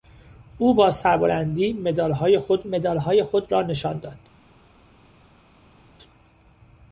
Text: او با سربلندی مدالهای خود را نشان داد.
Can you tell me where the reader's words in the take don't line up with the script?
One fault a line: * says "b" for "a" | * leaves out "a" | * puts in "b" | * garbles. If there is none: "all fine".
* puts in "مدالهای خود"